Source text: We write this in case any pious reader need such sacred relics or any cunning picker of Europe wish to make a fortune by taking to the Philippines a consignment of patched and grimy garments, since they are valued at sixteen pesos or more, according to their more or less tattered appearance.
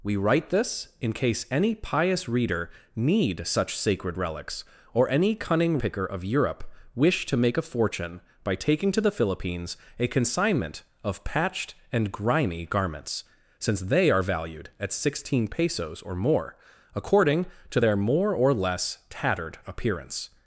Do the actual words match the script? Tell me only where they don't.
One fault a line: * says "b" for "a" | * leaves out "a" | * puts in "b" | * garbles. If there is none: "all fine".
all fine